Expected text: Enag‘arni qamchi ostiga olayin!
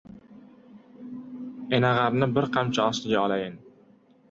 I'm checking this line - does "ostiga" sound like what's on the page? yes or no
yes